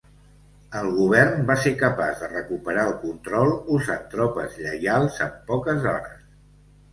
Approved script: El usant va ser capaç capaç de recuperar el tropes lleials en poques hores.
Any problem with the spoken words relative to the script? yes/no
yes